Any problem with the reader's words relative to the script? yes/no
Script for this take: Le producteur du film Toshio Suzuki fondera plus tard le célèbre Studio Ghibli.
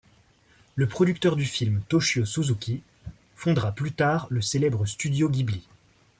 no